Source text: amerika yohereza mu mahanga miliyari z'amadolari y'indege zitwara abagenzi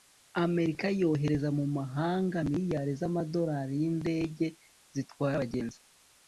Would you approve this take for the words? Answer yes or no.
yes